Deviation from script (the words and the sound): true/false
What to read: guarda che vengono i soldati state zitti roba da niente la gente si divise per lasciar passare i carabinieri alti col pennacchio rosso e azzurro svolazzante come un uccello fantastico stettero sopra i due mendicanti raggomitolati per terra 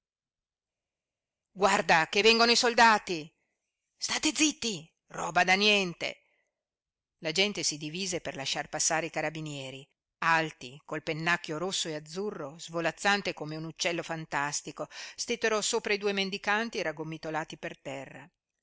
false